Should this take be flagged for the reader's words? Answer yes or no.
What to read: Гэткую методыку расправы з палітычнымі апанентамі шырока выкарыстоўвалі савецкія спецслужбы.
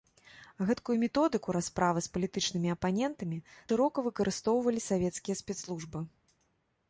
no